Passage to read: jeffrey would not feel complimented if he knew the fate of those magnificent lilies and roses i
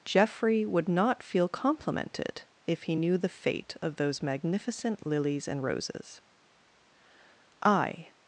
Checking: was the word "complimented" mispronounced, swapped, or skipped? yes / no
no